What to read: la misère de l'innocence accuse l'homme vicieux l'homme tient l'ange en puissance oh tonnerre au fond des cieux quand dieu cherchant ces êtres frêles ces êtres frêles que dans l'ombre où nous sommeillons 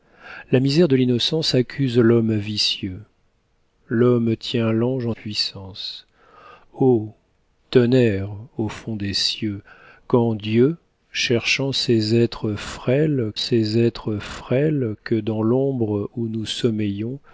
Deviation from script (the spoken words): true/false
false